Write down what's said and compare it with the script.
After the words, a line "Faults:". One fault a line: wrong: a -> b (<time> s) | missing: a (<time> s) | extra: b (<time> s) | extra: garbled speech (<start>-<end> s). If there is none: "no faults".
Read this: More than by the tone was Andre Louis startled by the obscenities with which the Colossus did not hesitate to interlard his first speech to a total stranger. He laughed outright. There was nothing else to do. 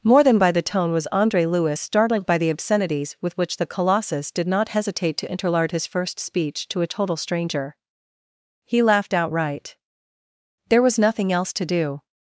More than by the tone was Andre Louis startled by the obscenities with which the Colossus did not hesitate to interlard his first speech to a total stranger. He laughed outright. There was nothing else to do.
Faults:
no faults